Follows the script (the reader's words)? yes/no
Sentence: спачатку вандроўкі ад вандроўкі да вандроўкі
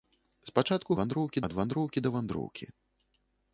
yes